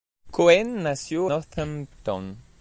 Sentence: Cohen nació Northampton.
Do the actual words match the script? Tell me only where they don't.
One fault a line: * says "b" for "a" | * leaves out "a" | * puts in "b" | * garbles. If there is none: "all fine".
all fine